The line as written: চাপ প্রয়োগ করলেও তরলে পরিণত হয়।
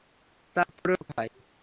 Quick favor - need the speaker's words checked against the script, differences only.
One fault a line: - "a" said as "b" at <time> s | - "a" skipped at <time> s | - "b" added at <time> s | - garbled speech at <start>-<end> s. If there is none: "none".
- "করলেও তরলে পরিণত" skipped at 1.1 s